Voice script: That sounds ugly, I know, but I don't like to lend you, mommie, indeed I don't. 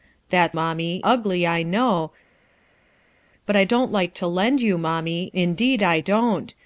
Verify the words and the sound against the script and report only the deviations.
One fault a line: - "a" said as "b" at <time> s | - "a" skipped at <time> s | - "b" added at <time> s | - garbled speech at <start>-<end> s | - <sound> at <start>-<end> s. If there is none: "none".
- "sounds" said as "mommie" at 0.5 s